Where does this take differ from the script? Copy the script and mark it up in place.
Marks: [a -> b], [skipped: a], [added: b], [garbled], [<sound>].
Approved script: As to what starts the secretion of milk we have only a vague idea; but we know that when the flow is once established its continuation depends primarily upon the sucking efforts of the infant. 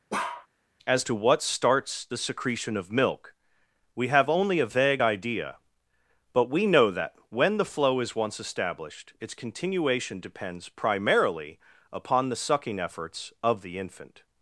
[bark] As to what starts the secretion of milk we have only a vague idea; but we know that when the flow is once established its continuation depends primarily upon the sucking efforts of the infant.